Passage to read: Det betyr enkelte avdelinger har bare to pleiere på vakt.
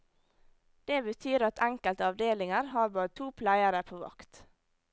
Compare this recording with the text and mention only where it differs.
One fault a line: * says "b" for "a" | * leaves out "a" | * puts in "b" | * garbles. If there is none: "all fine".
* puts in "at"